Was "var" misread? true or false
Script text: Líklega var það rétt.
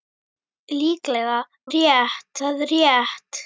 true